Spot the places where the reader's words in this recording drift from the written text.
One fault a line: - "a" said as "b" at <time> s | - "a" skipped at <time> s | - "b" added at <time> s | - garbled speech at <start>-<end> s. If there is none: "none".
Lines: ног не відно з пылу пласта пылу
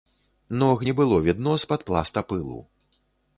- "было" added at 1.0 s
- "пылу" said as "пад" at 1.7 s